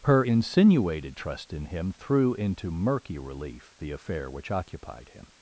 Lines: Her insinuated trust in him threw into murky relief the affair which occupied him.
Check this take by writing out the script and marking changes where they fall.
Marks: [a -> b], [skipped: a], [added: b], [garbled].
Her insinuated trust in him threw into murky relief the affair which occupied him.